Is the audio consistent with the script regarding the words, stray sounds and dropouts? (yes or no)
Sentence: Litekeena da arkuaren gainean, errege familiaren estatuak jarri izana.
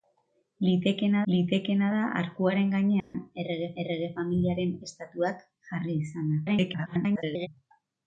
no